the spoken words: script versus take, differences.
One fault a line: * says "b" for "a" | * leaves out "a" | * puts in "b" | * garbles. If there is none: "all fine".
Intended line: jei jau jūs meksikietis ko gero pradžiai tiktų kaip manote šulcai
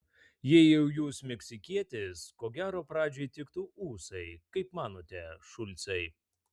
* puts in "ūsai"